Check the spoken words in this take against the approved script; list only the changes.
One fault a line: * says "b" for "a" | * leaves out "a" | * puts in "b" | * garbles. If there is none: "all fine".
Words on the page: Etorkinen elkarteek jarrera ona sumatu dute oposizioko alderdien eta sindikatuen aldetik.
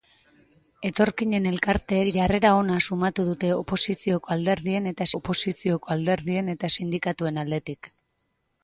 * puts in "oposizioko alderdien eta"